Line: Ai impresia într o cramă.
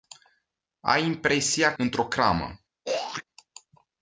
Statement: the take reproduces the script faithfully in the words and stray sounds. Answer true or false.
false